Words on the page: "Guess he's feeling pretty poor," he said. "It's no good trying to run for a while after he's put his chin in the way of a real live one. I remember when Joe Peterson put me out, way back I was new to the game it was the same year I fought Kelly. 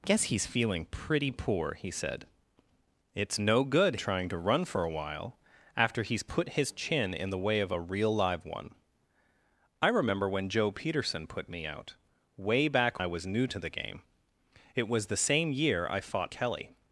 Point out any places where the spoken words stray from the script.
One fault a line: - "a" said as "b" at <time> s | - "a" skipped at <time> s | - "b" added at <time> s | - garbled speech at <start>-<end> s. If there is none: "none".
none